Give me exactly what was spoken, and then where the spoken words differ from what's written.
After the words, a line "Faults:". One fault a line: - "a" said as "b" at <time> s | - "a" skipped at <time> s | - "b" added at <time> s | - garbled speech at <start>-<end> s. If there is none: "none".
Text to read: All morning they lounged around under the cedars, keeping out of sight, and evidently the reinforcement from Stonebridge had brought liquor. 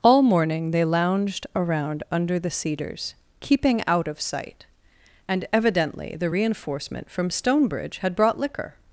All morning they lounged around under the cedars, keeping out of sight, and evidently the reinforcement from Stonebridge had brought liquor.
Faults:
none